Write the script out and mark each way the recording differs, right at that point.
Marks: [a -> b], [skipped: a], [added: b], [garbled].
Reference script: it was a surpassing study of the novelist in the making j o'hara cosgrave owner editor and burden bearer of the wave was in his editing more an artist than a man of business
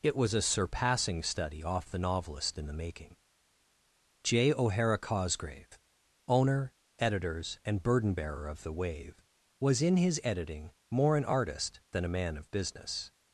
it was a surpassing study [of -> off] the novelist in the making j o'hara cosgrave owner [editor -> editors] and burden bearer of the wave was in his editing more an artist than a man of business